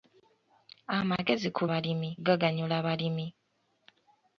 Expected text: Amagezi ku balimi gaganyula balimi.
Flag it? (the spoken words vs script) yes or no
no